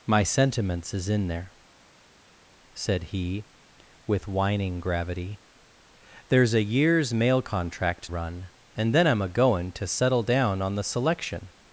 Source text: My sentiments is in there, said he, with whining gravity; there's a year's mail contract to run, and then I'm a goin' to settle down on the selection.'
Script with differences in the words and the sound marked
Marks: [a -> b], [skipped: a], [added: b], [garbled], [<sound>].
My sentiments is in there, said he, with whining gravity; there's a year's mail contract [skipped: to] run, and then I'm a goin' to settle down on the selection.'